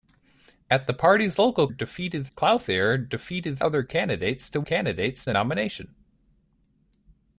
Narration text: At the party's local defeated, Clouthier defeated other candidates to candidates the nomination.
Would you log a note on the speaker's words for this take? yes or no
no